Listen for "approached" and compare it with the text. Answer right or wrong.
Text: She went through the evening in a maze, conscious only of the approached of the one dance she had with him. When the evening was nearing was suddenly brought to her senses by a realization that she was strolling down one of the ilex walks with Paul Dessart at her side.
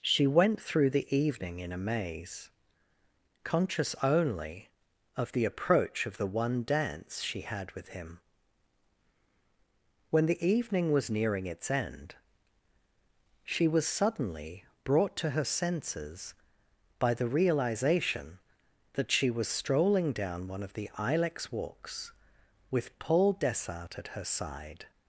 wrong